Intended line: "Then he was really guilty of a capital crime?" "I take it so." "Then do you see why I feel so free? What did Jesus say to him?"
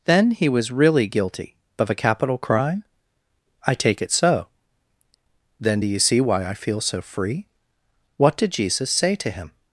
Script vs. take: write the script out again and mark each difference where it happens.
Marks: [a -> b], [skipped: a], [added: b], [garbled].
"Then he was really guilty of a capital crime?" "I take it so." "Then do you see why I feel so free? What did Jesus say to him?"